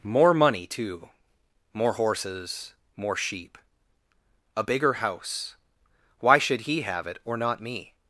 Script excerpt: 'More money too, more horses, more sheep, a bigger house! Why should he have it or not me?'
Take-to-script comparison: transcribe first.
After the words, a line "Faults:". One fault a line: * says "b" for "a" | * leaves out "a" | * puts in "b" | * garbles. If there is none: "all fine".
'More money too, more horses, more sheep, a bigger house! Why should he have it or not me?'
Faults:
all fine